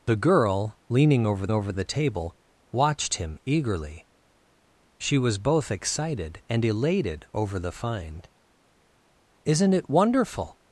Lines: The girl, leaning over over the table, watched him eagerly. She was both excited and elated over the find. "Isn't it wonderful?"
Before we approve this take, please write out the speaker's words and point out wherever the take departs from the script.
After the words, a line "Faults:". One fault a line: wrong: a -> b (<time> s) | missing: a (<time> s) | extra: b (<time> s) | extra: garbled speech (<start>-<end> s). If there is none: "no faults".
The girl, leaning over over the table, watched him eagerly. She was both excited and elated over the find. "Isn't it wonderful?"
Faults:
no faults